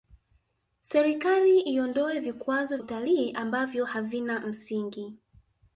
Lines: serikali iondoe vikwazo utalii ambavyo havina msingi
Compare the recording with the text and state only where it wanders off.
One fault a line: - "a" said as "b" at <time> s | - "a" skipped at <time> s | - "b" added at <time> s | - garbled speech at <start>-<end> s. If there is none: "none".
none